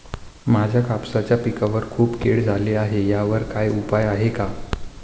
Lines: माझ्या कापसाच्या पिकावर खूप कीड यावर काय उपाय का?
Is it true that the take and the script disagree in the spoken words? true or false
true